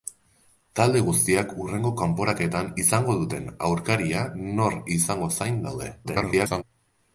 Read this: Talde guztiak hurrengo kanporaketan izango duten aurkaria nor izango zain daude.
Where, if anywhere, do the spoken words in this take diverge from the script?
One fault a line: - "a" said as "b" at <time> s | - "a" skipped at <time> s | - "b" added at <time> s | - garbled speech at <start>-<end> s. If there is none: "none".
- garbled speech at 6.0-6.6 s